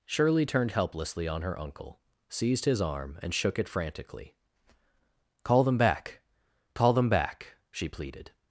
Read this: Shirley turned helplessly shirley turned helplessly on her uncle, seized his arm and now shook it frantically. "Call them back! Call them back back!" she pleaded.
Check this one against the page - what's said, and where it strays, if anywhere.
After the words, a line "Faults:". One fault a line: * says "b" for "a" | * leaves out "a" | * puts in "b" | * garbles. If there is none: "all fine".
Shirley turned helplessly on her uncle, seized his arm and shook it frantically. "Call them back! Call them back!" she pleaded.
Faults:
* leaves out "shirley turned helplessly"
* leaves out "now"
* leaves out "back"